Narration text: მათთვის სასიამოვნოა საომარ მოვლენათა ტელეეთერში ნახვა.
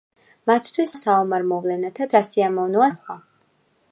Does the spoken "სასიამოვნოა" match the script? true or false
false